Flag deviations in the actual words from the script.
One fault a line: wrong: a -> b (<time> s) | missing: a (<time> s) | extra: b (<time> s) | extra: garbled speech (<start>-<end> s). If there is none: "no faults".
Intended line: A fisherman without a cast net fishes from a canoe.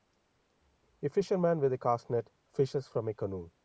wrong: without -> with (1.6 s)